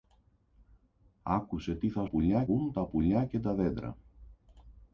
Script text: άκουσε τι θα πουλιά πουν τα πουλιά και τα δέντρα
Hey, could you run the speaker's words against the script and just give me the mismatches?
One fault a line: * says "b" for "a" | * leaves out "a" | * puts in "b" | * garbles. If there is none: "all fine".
all fine